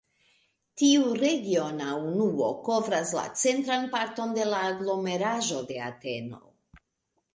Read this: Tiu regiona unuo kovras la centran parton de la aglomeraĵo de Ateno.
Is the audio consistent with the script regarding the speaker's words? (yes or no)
yes